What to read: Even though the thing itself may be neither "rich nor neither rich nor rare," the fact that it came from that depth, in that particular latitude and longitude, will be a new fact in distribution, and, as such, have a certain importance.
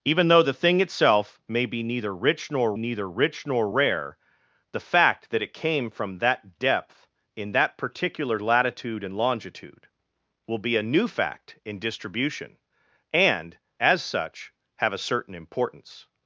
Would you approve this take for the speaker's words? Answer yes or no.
yes